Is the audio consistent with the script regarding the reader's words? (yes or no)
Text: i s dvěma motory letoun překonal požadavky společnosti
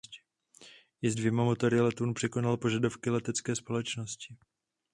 no